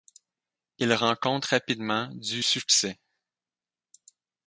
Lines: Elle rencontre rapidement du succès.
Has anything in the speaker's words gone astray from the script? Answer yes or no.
yes